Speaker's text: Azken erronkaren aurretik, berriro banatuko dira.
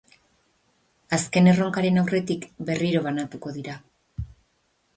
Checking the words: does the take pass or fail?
pass